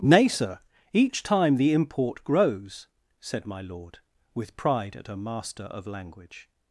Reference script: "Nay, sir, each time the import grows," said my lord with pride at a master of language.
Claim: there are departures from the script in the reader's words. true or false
false